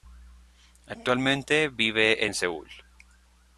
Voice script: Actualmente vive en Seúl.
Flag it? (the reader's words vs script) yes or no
no